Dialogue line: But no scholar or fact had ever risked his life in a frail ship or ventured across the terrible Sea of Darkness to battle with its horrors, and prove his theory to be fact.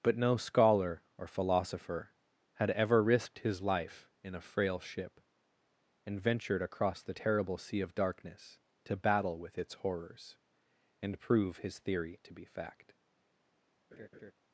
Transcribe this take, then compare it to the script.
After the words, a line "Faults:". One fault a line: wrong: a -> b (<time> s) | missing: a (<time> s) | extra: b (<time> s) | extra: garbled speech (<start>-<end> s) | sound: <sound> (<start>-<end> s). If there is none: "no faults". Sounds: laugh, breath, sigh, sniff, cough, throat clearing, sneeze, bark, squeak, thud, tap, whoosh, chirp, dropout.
But no scholar or philosopher had ever risked his life in a frail ship and ventured across the terrible Sea of Darkness to battle with its horrors, and prove his theory to be fact.
Faults:
wrong: fact -> philosopher (1.3 s)
wrong: or -> and (6.1 s)
sound: laugh (13.9-14.3 s)